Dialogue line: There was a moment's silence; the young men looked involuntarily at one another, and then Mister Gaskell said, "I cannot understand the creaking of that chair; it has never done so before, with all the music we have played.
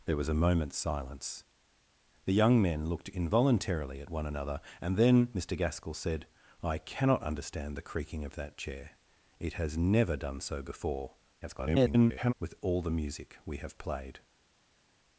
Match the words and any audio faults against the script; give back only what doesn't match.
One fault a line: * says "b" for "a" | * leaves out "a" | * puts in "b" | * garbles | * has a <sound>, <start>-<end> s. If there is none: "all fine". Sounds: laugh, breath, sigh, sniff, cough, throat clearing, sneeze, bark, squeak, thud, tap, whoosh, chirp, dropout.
* garbles